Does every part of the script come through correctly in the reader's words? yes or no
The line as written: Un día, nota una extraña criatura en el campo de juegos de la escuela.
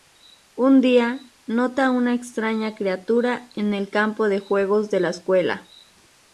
yes